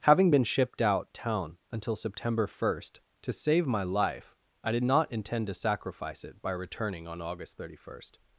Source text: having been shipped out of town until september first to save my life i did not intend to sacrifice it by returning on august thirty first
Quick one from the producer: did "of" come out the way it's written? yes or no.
no